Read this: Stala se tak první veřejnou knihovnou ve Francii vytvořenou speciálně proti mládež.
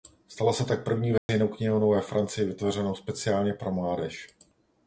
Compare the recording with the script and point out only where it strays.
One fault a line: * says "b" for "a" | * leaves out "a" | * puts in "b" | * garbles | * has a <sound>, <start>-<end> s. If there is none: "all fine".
* has a dropout, 1.2-1.3 s
* says "pro" for "proti"